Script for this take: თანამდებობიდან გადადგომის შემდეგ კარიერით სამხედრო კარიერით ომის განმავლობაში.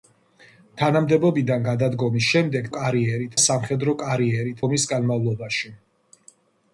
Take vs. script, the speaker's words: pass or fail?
pass